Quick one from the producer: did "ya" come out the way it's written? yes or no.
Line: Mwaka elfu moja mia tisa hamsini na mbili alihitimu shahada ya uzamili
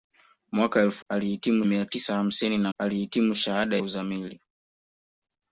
no